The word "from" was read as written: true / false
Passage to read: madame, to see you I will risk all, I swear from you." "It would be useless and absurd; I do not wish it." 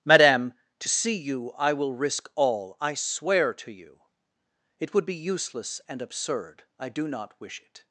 false